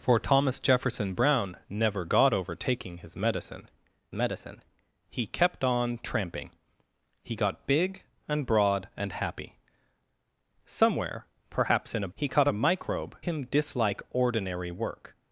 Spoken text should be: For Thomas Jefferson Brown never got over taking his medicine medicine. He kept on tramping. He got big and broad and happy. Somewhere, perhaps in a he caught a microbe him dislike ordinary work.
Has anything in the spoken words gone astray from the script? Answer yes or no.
no